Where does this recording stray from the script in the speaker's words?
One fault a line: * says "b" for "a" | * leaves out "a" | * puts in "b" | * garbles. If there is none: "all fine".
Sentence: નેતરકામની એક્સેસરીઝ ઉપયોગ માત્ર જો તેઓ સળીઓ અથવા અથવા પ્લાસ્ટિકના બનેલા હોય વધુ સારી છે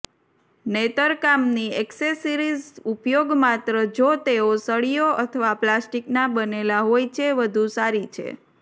* leaves out "અથવા"
* puts in "છે"